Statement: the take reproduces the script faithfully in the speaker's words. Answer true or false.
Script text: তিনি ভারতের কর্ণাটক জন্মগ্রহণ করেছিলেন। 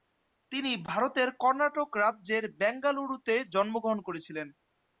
false